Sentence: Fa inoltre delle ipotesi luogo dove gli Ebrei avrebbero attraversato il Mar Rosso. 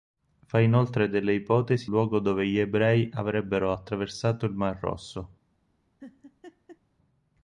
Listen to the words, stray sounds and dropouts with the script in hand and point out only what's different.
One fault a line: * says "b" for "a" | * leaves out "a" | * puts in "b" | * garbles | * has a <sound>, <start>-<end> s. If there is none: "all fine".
* has a laugh, 6.0-6.8 s